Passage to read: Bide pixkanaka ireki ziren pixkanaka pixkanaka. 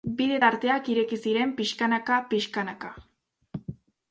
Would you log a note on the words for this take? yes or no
yes